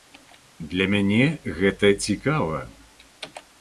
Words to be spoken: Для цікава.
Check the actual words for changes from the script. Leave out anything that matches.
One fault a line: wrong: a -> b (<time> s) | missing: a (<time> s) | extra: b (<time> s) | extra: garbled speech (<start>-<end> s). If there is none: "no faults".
extra: мяне гэта (0.9 s)